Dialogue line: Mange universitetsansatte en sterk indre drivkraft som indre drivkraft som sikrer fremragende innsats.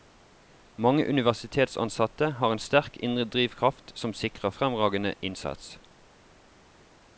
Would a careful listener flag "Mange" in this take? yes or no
no